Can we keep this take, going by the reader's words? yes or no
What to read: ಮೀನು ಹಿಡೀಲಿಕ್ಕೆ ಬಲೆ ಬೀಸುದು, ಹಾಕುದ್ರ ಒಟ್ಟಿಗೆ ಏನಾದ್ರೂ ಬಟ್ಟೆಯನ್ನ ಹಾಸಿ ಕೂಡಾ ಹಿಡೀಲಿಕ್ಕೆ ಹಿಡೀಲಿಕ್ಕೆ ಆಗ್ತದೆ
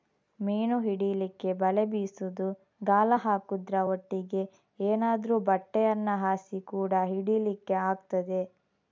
no